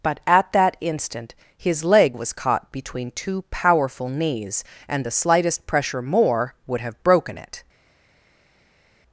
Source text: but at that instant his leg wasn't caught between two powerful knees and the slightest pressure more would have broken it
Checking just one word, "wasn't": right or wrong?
wrong